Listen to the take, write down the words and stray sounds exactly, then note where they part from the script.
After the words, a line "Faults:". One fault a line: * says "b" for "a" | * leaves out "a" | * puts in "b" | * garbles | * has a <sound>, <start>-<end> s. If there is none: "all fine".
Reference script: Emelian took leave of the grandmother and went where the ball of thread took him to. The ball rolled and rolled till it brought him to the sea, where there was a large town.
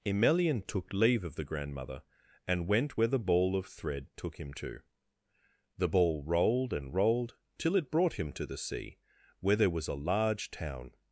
Emelian took leave of the grandmother and went where the ball of thread took him to. The ball rolled and rolled till it brought him to the sea, where there was a large town.
Faults:
all fine